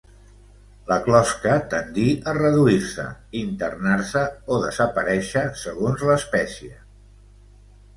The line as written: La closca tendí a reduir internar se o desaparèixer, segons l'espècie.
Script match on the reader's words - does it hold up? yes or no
no